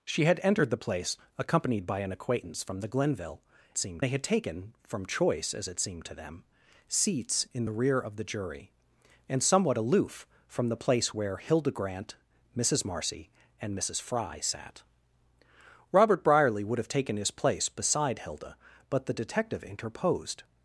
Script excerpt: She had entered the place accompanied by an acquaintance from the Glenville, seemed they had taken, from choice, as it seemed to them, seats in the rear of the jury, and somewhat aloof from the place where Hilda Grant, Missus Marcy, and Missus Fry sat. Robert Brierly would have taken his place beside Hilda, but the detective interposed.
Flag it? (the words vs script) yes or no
no